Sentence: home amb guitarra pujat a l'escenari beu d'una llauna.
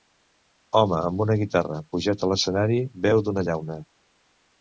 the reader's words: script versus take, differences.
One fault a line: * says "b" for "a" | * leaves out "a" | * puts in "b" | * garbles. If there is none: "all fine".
* puts in "una"